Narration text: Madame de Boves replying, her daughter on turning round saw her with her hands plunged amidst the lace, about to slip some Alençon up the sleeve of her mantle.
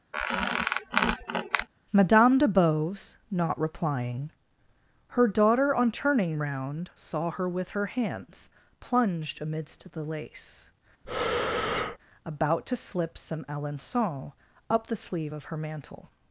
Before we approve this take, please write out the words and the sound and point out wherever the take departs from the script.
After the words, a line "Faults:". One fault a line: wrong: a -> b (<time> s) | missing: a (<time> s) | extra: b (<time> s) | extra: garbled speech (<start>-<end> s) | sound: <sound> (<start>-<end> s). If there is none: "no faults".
Madame de Boves not replying, her daughter on turning round saw her with her hands plunged amidst the lace, about to slip some Alençon up the sleeve of her mantle.
Faults:
sound: squeak (0.1-1.7 s)
extra: not (3.3 s)
sound: breath (11.0-12.0 s)